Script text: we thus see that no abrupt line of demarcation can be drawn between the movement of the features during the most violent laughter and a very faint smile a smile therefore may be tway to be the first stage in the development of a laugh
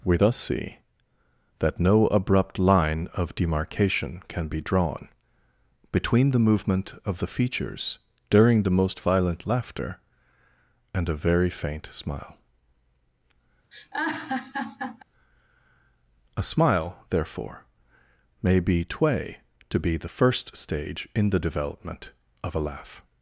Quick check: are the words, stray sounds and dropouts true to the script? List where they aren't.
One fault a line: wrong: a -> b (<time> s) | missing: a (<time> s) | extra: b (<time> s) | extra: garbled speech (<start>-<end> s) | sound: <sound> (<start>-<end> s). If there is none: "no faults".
sound: laugh (13.7-15.0 s)